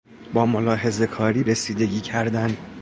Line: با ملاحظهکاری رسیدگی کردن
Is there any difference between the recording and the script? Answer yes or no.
no